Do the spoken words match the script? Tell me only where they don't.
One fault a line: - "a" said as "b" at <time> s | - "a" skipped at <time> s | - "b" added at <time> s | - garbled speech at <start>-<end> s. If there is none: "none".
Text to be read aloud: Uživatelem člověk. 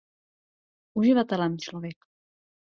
none